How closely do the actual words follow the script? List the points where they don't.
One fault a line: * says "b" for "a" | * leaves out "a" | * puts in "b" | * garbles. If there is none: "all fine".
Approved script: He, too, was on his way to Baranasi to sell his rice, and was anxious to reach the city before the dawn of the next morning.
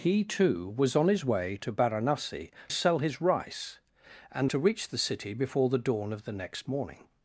* leaves out "to"
* leaves out "was anxious"